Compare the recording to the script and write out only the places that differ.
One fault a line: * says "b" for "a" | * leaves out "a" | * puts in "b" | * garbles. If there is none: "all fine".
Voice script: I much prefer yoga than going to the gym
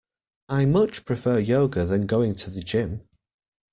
all fine